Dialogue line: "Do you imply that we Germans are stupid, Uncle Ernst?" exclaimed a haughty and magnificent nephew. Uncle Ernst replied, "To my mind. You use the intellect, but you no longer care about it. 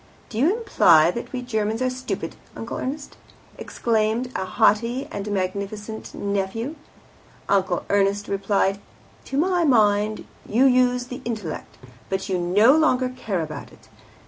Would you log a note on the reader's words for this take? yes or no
no